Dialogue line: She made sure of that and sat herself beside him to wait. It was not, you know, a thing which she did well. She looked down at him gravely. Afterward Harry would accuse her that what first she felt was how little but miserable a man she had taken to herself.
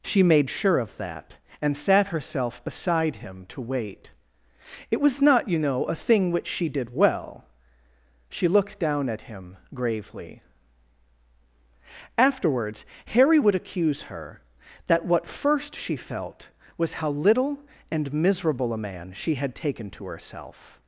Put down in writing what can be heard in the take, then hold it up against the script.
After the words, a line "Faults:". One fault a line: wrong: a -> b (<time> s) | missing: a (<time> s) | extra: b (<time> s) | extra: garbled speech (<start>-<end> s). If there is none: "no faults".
She made sure of that and sat herself beside him to wait. It was not, you know, a thing which she did well. She looked down at him gravely. Afterwards Harry would accuse her that what first she felt was how little and miserable a man she had taken to herself.
Faults:
wrong: Afterward -> Afterwards (12.2 s)
wrong: but -> and (17.9 s)